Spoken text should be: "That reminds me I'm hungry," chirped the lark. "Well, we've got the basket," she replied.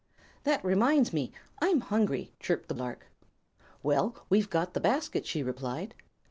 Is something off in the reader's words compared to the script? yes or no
no